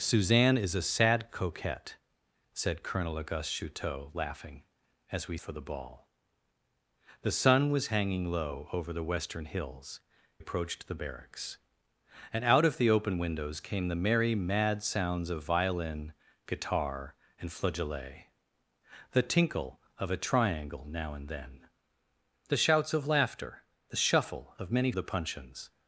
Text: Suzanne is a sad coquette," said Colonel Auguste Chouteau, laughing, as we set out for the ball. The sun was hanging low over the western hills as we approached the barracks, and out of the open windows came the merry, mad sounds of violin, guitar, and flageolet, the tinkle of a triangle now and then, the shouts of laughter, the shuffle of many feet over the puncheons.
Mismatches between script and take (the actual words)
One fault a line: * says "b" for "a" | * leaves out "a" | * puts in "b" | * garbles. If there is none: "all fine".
* leaves out "set out"
* leaves out "as we"
* leaves out "feet over"